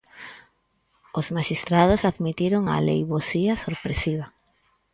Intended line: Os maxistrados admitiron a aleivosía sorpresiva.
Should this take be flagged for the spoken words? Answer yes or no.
no